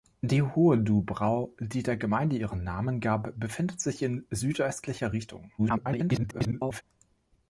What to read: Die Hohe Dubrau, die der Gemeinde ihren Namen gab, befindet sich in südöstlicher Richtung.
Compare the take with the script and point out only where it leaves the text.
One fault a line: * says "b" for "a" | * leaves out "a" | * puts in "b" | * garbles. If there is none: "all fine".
* garbles